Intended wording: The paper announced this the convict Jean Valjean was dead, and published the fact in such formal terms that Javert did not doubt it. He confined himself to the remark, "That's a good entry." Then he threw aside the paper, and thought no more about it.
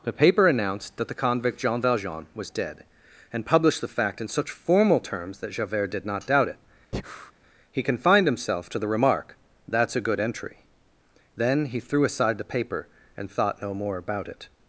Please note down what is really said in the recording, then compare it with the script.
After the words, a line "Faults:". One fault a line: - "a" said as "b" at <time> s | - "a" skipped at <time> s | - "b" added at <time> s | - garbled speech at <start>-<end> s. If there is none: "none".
The paper announced that the convict Jean Valjean was dead, and published the fact in such formal terms that Javert did not doubt it. He confined himself to the remark, "That's a good entry." Then he threw aside the paper, and thought no more about it.
Faults:
- "this" said as "that" at 1.0 s